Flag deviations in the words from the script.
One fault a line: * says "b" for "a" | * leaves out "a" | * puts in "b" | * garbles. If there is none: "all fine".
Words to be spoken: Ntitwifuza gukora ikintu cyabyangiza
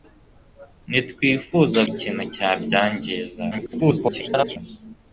* leaves out "gukora"
* garbles